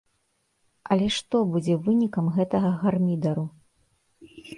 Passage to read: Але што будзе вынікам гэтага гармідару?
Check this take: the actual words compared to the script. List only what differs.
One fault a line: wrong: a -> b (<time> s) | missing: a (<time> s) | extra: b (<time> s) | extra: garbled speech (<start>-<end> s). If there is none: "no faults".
no faults